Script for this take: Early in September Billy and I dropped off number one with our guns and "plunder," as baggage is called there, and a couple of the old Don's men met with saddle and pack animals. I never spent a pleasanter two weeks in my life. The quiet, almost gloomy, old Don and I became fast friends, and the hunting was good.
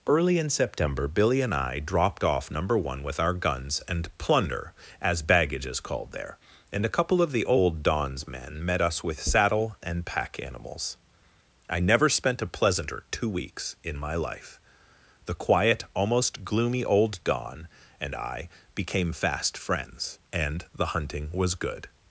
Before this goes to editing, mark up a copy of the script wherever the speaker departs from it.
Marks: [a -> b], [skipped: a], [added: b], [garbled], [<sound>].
Early in September Billy and I dropped off number one with our guns and "plunder," as baggage is called there, and a couple of the old Don's men met [added: us] with saddle and pack animals. I never spent a pleasanter two weeks in my life. The quiet, almost gloomy, old Don and I became fast friends, and the hunting was good.